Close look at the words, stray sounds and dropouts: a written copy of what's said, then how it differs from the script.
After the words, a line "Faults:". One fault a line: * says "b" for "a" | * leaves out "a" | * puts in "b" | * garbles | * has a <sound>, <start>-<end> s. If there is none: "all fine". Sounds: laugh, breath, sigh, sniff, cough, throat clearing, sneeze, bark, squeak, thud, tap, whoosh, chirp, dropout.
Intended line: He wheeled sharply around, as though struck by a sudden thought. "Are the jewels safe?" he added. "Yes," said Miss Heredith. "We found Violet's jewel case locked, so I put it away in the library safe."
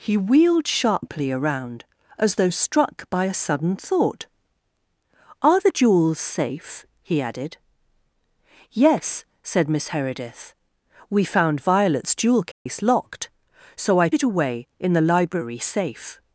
He wheeled sharply around, as though struck by a sudden thought. "Are the jewels safe?" he added. "Yes," said Miss Heredith. "We found Violet's jewel case locked, so I it away in the library safe."
Faults:
* has a dropout, 12.5-12.7 s
* leaves out "put"